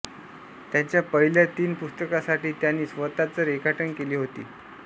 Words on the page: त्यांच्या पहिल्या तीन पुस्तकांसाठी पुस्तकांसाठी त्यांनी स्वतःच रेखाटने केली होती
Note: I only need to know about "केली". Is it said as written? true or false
true